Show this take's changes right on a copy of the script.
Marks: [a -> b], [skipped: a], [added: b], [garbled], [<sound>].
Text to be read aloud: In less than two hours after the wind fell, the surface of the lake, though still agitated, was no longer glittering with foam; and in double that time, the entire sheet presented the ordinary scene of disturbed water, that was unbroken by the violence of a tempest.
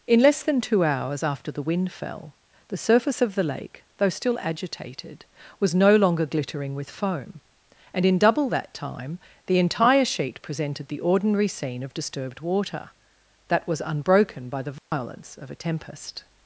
In less than two hours after the wind fell, the surface of the lake, though still agitated, was no longer glittering with foam; and in double that time, the entire sheet presented the ordinary scene of disturbed water, that was unbroken by the violence [dropout] of a tempest.